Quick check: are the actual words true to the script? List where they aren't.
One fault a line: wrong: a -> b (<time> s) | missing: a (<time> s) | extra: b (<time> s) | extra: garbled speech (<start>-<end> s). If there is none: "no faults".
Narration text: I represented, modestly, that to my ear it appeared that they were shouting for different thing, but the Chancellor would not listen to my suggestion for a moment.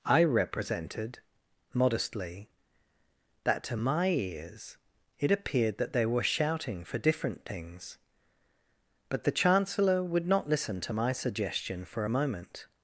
wrong: ear -> ears (4.1 s)
wrong: thing -> things (7.4 s)